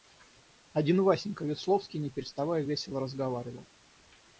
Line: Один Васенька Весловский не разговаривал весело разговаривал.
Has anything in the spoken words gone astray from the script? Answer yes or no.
yes